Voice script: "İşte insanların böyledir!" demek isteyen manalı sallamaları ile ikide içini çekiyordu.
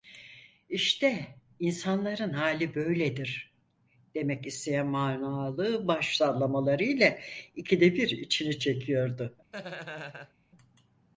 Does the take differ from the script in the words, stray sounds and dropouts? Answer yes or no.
yes